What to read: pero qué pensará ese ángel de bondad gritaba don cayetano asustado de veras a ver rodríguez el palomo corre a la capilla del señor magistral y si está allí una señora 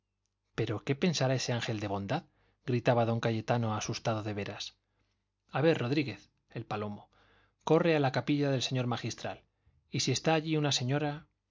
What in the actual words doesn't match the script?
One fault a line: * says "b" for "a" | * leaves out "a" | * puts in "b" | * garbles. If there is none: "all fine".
all fine